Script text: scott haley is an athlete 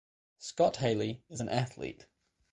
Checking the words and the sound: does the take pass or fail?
pass